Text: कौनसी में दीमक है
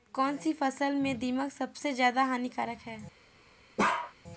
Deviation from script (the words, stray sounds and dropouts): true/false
true